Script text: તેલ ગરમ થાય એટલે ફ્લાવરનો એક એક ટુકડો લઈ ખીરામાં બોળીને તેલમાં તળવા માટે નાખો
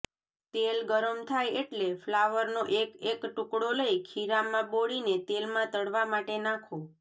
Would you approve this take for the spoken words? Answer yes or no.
yes